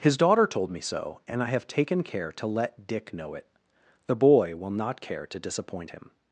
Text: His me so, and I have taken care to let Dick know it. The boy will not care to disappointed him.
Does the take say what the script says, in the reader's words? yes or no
no